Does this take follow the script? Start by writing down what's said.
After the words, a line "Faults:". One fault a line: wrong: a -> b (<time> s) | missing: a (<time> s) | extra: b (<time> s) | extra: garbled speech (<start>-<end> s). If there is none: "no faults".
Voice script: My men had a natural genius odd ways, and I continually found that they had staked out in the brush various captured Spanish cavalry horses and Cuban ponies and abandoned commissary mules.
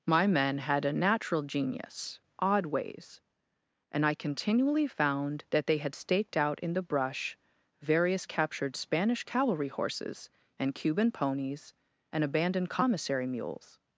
My men had a natural genius odd ways, and I continually found that they had staked out in the brush various captured Spanish cavalry horses and Cuban ponies and abandoned commissary mules.
Faults:
no faults